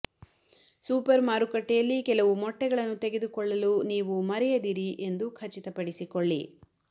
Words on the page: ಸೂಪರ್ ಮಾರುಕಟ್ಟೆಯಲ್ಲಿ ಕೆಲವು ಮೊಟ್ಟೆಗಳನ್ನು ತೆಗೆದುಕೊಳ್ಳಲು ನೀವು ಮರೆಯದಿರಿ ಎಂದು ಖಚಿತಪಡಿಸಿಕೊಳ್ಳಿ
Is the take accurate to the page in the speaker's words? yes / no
yes